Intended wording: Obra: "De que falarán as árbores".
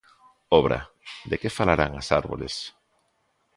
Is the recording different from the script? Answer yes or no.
no